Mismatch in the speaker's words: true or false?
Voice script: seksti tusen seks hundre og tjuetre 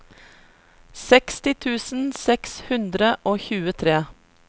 false